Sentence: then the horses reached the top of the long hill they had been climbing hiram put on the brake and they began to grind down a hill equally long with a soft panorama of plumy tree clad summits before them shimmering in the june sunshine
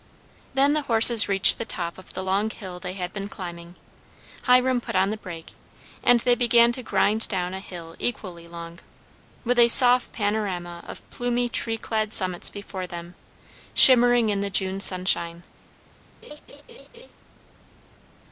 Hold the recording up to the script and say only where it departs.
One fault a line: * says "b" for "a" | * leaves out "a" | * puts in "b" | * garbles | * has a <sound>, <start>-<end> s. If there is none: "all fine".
* has a laugh, 16.2-17.1 s